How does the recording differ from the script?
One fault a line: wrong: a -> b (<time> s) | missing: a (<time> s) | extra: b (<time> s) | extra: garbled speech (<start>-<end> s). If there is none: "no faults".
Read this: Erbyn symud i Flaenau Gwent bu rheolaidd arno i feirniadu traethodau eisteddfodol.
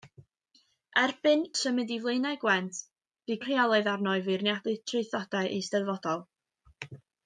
no faults